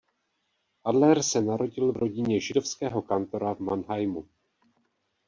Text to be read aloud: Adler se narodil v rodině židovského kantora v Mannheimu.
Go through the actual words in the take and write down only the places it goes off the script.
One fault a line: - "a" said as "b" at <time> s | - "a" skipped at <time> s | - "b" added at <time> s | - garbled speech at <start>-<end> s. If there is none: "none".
none